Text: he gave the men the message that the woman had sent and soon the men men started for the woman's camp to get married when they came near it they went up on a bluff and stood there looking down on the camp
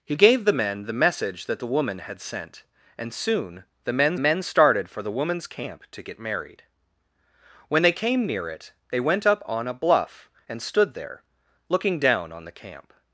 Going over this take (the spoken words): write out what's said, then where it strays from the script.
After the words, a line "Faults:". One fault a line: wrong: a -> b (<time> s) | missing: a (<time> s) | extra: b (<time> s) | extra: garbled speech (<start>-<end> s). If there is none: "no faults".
he gave the men the message that the woman had sent and soon the men men started for the woman's camp to get married when they came near it they went up on a bluff and stood there looking down on the camp
Faults:
no faults